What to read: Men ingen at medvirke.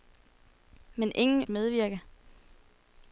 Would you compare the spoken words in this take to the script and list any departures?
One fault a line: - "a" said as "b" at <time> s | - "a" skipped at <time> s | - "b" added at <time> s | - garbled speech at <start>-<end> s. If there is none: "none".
none